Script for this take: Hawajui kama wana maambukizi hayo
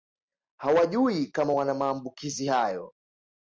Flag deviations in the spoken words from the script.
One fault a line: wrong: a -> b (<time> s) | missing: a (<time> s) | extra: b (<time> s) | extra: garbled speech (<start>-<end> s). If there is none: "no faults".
no faults